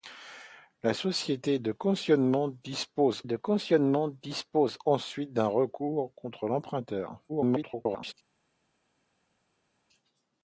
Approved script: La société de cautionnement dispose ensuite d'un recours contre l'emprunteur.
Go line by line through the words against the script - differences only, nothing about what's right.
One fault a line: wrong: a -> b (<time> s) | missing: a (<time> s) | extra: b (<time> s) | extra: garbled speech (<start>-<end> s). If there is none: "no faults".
extra: de cautionnement dispose (3.2 s)
extra: garbled speech (7.3-8.1 s)